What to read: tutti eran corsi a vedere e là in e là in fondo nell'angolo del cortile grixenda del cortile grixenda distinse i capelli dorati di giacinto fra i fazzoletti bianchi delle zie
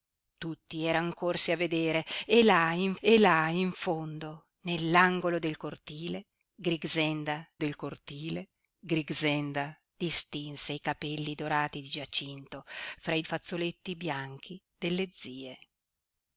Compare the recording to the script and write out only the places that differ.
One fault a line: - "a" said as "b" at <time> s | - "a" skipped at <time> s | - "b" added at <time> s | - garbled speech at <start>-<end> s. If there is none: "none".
none